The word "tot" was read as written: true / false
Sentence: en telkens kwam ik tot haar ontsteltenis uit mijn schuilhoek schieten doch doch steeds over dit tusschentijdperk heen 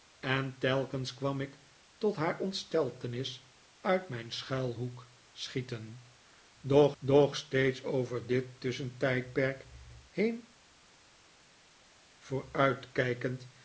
true